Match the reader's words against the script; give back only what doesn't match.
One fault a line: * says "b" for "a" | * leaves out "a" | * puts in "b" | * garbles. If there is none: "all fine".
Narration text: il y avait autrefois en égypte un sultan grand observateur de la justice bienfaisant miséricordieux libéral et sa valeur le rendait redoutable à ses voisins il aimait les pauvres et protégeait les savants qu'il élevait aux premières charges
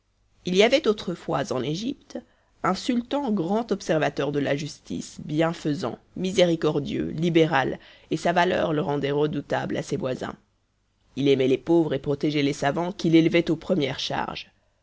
all fine